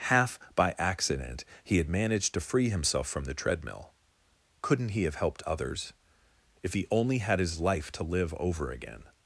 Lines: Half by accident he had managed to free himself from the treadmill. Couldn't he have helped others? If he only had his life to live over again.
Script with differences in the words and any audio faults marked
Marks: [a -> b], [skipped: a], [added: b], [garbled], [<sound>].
Half by accident he had managed to free himself from the treadmill. Couldn't he have helped others? If he only had his life to live over again.